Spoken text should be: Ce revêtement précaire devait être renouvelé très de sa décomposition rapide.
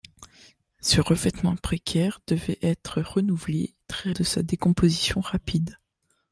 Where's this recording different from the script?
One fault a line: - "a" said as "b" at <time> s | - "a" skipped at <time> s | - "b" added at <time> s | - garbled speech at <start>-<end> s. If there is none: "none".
none